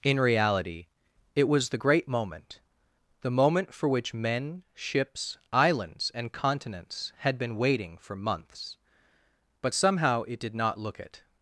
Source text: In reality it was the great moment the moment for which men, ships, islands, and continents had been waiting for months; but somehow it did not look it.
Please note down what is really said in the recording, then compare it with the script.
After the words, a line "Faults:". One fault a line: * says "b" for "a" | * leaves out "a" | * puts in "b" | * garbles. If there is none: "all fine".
In reality it was the great moment the moment for which men, ships, islands, and continents had been waiting for months; but somehow it did not look it.
Faults:
all fine